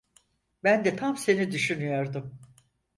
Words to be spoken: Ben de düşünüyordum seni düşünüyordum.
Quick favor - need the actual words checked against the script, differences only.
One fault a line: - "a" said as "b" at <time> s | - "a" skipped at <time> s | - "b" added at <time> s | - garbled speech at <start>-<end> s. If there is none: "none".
- "düşünüyordum" said as "tam" at 1.0 s